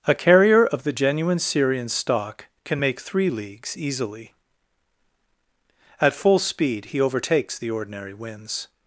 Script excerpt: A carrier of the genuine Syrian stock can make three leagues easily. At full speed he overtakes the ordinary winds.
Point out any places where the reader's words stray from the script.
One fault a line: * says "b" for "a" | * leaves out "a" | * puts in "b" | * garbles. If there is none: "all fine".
all fine